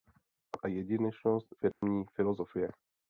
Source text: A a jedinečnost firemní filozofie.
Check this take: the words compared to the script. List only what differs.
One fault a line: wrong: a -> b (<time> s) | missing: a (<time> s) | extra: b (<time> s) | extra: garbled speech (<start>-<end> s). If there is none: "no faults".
no faults